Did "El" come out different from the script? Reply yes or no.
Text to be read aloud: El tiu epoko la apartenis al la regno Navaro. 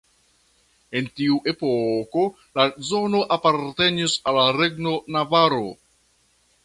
yes